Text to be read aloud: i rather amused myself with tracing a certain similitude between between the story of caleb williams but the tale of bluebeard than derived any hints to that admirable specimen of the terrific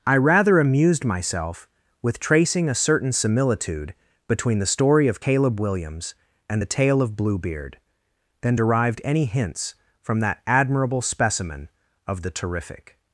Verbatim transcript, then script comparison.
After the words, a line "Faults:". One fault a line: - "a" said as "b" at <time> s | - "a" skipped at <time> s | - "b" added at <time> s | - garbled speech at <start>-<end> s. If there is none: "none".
i rather amused myself with tracing a certain similitude between the story of caleb williams and the tale of bluebeard than derived any hints from that admirable specimen of the terrific
Faults:
- "between" skipped at 4.6 s
- "but" said as "and" at 6.5 s
- "to" said as "from" at 10.0 s